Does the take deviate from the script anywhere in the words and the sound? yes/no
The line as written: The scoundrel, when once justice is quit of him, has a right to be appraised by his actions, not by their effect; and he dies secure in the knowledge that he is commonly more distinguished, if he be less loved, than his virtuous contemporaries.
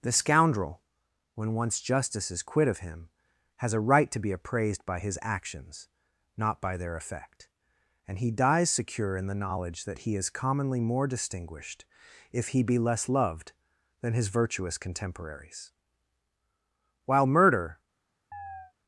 yes